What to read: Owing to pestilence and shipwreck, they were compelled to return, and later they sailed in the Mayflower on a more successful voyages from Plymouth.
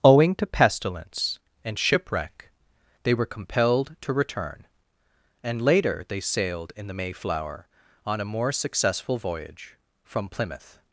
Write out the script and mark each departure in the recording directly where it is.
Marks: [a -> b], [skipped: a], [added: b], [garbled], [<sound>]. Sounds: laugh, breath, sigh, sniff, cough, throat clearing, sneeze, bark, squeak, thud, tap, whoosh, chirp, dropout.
Owing to pestilence and shipwreck, they were compelled to return, and later they sailed in the Mayflower on a more successful [voyages -> voyage] from Plymouth.